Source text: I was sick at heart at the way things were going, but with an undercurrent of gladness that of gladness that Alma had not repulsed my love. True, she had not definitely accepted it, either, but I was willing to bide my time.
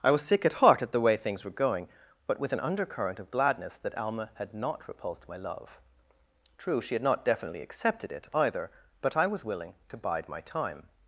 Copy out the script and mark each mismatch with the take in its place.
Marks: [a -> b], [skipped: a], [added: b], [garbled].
I was sick at heart at the way things were going, but with an undercurrent of gladness that [skipped: of gladness that] Alma had not repulsed my love. True, she had not definitely accepted it, either, but I was willing to bide my time.